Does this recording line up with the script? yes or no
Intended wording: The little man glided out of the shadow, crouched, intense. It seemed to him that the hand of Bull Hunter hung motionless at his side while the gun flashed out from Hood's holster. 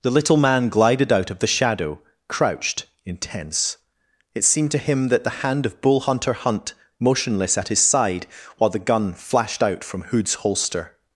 no